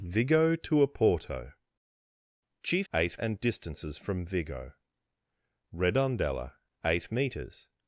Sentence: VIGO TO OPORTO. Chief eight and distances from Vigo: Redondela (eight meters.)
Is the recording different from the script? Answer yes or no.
no